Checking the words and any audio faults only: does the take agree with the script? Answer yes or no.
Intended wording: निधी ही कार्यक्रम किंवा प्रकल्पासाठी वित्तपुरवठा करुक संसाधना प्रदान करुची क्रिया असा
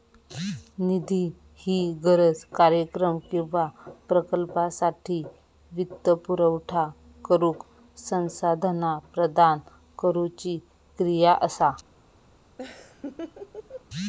no